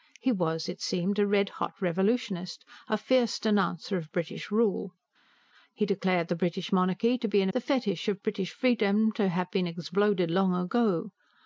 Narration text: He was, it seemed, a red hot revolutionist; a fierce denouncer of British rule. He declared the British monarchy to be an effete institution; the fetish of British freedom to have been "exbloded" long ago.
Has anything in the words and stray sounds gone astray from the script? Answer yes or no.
yes